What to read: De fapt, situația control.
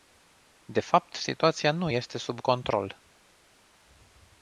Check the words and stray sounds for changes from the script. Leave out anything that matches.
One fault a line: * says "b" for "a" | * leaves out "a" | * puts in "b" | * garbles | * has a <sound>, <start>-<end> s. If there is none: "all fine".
* puts in "nu este sub"